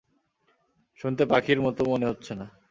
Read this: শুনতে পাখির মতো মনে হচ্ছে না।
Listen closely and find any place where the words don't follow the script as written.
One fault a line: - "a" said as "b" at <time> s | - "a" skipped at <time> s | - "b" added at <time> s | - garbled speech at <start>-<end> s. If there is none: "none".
none